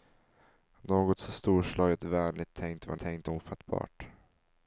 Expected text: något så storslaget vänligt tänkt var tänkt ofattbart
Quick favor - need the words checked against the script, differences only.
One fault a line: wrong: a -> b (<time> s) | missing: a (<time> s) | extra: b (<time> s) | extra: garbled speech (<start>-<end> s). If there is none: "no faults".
no faults